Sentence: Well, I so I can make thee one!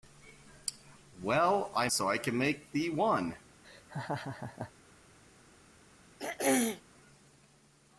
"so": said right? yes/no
yes